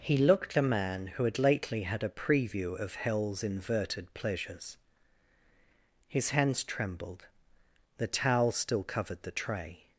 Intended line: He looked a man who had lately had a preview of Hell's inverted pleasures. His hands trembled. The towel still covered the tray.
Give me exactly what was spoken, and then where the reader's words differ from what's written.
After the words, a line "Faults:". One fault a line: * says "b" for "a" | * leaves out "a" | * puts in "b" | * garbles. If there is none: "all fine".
He looked a man who had lately had a preview of Hell's inverted pleasures. His hands trembled. The towel still covered the tray.
Faults:
all fine